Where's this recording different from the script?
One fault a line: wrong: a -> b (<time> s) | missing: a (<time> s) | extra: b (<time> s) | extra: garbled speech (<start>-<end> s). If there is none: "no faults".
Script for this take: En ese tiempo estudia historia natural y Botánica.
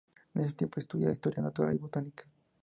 no faults